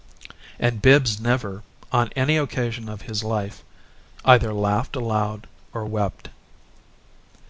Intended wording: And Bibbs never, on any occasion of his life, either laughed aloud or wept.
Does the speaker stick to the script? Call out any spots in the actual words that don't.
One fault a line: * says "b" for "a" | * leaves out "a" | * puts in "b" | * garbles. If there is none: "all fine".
all fine